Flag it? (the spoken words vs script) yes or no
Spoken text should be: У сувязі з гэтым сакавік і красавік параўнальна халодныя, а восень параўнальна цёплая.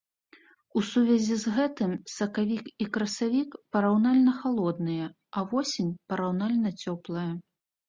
no